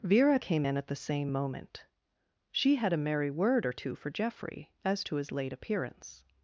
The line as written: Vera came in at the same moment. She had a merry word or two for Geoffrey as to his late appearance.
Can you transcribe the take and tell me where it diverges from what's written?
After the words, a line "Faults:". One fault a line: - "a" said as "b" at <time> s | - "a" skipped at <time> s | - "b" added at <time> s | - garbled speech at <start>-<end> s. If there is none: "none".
Vera came in at the same moment. She had a merry word or two for Geoffrey as to his late appearance.
Faults:
none